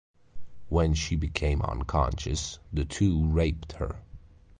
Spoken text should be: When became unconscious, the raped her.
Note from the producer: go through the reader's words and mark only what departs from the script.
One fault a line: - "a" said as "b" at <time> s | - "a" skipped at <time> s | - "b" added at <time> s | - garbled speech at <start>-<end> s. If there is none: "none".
- "she" added at 0.9 s
- "two" added at 2.8 s